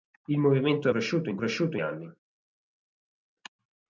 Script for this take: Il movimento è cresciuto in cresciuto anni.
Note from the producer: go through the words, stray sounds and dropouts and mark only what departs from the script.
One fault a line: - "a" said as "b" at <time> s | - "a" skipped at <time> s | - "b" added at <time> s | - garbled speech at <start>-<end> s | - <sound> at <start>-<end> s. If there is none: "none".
none